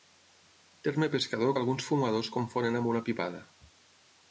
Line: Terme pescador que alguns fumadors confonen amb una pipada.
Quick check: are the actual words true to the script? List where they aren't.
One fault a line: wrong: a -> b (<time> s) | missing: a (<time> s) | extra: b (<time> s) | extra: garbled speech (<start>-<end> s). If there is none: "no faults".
no faults